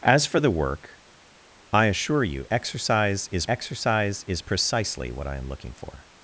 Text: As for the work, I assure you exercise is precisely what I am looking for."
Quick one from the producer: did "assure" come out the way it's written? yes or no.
yes